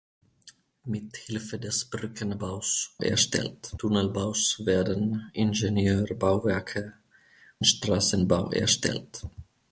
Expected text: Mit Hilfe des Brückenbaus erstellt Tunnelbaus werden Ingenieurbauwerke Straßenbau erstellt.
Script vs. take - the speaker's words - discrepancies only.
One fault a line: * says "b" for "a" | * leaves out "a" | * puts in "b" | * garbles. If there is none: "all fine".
all fine